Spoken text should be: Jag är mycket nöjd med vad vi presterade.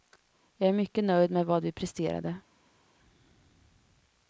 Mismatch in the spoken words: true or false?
false